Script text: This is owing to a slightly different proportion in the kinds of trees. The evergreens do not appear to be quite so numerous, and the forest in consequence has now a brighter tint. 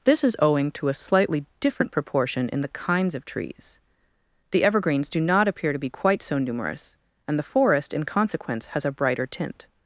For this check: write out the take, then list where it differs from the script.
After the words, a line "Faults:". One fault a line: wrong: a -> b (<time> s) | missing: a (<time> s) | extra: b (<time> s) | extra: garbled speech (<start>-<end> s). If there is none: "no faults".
This is owing to a slightly different proportion in the kinds of trees. The evergreens do not appear to be quite so numerous, and the forest in consequence has a brighter tint.
Faults:
missing: now (8.8 s)